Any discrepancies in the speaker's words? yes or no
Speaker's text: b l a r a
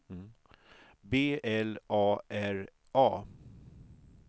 no